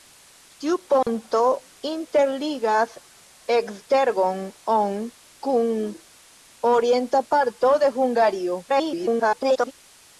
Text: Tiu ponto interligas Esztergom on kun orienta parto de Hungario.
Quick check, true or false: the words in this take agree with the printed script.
false